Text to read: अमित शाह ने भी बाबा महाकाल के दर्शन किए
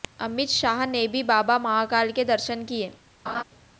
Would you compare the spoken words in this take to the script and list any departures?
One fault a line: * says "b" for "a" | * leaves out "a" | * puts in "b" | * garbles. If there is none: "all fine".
all fine